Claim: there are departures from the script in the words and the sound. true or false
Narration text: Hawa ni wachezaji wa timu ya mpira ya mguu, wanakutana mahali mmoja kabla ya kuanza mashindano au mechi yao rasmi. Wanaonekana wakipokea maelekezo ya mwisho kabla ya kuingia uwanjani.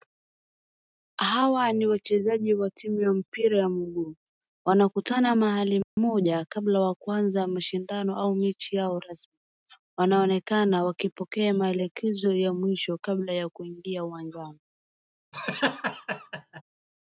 true